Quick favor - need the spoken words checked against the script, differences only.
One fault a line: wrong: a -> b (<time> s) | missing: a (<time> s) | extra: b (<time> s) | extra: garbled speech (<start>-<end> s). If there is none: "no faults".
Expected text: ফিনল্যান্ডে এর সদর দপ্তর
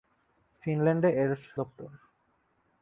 missing: সদর (1.3 s)